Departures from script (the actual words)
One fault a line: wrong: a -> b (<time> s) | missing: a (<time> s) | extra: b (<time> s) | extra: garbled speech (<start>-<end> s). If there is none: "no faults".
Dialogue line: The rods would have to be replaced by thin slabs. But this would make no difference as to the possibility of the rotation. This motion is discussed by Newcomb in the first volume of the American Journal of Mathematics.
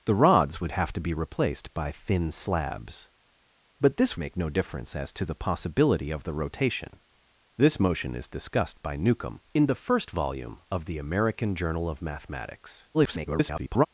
missing: would (4.2 s)
extra: garbled speech (12.9-13.9 s)